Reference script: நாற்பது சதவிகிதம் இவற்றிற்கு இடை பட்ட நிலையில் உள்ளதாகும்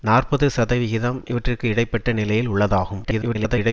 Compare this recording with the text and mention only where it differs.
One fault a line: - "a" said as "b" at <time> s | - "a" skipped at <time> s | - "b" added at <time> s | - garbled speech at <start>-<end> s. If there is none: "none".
- garbled speech at 3.0-3.7 s